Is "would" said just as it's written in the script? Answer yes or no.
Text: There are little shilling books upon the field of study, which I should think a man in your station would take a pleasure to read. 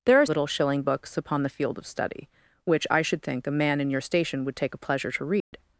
yes